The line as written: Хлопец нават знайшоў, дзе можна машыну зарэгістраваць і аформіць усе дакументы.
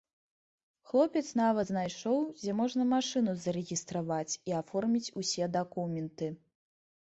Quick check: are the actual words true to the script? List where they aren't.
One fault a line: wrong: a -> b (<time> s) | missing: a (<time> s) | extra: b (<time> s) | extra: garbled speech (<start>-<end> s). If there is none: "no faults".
no faults